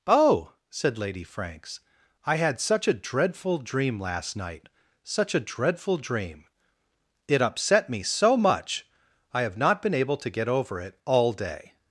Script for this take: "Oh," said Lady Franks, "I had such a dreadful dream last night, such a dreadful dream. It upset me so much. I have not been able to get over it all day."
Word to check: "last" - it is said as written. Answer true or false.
true